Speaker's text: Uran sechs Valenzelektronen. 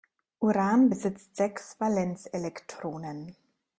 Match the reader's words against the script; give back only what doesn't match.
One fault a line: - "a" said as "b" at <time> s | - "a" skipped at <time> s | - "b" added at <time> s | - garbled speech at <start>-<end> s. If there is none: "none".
- "besitzt" added at 0.9 s